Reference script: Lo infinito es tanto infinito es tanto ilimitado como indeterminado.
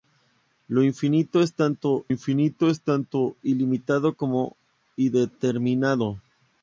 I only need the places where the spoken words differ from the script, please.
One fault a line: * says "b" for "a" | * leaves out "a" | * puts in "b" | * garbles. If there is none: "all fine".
all fine